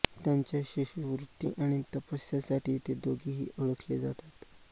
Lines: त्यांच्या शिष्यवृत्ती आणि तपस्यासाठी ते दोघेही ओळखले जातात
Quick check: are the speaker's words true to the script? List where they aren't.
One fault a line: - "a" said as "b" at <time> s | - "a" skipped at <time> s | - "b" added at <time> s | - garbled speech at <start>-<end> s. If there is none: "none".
none